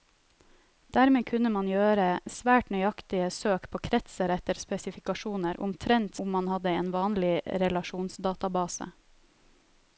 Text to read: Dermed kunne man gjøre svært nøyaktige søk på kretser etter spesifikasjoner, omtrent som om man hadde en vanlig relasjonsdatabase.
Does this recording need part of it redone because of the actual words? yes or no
yes